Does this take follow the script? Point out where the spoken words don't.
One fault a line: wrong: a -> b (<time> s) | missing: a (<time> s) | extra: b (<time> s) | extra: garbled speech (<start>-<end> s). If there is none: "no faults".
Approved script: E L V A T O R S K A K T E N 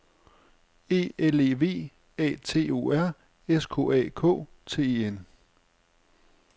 extra: E (1.4 s)